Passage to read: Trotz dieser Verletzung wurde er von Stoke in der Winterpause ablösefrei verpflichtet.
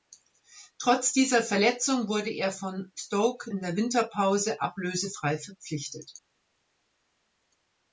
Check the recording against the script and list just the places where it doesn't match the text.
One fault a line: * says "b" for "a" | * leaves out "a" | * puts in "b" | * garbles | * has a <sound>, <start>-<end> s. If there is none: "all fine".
all fine